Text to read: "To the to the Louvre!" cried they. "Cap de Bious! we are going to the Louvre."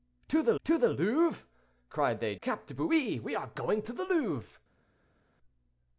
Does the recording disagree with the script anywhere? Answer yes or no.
no